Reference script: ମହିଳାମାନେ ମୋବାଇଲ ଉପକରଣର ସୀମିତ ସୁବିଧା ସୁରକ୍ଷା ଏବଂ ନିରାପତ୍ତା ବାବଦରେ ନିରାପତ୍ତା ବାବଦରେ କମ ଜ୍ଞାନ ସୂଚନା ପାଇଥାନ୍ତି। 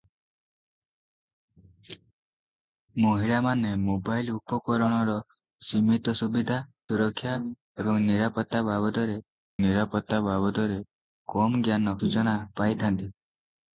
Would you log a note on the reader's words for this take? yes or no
no